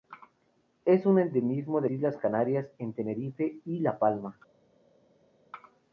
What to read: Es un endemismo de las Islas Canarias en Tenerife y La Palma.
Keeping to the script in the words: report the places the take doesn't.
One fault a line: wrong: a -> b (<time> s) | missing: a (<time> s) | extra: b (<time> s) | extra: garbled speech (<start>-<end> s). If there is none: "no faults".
missing: las (1.9 s)